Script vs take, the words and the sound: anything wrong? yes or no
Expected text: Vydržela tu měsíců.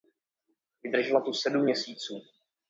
yes